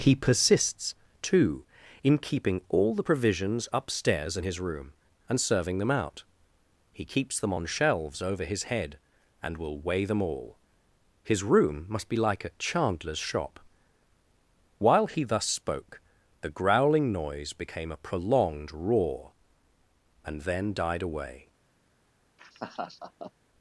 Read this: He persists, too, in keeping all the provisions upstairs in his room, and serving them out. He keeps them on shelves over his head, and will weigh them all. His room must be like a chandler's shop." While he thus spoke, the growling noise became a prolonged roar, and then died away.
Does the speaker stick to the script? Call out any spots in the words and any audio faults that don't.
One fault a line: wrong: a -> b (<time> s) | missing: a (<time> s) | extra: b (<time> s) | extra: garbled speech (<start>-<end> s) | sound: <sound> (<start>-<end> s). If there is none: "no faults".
sound: laugh (22.4-23.3 s)